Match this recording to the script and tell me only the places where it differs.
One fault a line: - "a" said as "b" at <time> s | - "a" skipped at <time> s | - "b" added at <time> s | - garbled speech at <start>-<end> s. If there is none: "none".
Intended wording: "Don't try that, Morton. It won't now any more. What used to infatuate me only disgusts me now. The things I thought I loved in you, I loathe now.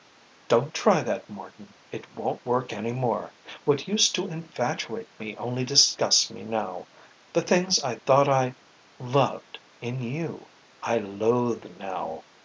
- "now" said as "work" at 2.4 s